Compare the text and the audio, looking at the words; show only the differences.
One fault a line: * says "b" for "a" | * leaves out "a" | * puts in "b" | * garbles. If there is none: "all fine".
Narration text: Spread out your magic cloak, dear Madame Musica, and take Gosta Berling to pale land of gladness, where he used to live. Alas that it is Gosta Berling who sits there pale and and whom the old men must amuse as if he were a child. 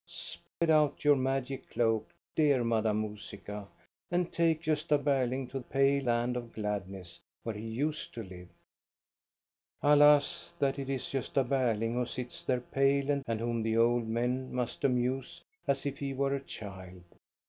all fine